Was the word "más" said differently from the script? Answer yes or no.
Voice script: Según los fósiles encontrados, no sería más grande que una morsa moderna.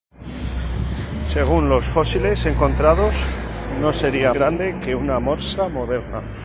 yes